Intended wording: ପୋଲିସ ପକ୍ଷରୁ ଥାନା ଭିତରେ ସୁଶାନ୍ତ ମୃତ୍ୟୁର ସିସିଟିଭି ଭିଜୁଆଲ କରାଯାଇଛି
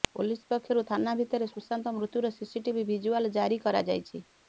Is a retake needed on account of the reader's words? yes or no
yes